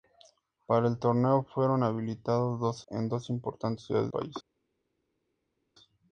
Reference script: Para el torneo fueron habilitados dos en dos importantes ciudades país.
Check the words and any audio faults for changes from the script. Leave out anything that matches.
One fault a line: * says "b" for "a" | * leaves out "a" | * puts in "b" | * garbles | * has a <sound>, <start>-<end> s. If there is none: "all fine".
all fine